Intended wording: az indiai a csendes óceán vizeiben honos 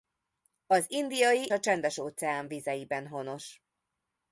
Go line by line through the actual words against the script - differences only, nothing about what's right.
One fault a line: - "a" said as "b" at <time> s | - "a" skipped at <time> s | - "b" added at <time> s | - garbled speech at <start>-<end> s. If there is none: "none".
none